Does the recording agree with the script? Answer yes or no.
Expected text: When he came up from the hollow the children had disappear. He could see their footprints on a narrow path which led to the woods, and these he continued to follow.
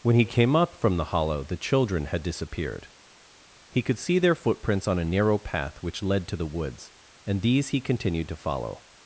no